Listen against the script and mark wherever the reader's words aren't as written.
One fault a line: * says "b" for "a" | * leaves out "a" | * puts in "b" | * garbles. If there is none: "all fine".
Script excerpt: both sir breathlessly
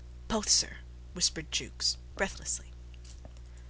* puts in "whispered jukes"